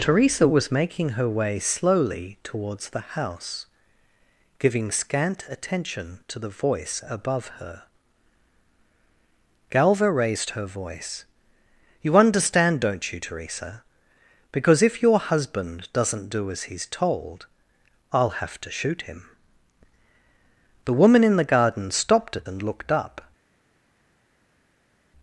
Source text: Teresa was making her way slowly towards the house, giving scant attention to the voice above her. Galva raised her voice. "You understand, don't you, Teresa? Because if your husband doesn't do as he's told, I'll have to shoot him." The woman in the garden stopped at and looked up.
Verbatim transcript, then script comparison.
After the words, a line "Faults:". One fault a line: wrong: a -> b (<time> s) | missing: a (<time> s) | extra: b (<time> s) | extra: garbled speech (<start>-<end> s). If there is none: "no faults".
Teresa was making her way slowly towards the house, giving scant attention to the voice above her. Galva raised her voice. "You understand, don't you, Teresa? Because if your husband doesn't do as he's told, I'll have to shoot him." The woman in the garden stopped at and looked up.
Faults:
no faults